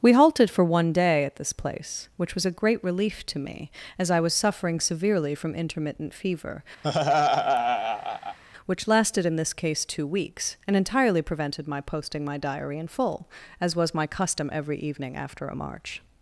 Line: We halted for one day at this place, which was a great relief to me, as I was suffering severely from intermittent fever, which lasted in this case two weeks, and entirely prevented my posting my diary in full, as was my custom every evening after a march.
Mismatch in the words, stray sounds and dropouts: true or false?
true